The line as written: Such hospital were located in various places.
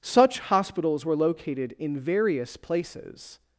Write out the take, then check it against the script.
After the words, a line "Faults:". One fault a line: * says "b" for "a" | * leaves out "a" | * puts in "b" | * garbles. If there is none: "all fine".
Such hospitals were located in various places.
Faults:
* says "hospitals" for "hospital"